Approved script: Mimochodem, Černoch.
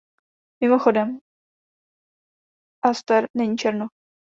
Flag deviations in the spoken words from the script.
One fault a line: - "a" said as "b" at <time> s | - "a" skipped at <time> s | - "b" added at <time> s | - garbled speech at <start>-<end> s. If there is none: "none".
- "Aster není" added at 2.9 s